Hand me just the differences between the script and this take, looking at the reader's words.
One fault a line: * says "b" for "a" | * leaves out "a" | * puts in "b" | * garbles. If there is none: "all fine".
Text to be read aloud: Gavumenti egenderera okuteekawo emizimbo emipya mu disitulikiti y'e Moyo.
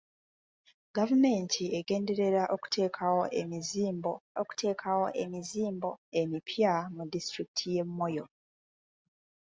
* puts in "okuteekawo emizimbo"